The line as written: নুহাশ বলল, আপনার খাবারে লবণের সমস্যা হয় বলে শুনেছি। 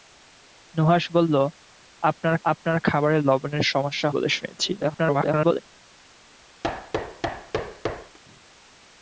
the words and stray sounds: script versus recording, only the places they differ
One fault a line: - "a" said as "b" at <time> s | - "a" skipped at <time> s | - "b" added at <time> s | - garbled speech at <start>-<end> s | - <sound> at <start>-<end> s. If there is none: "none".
- "আপনার" added at 2.5 s
- "হয়" skipped at 4.1 s
- garbled speech at 4.8-5.6 s
- thud at 6.6-8.2 s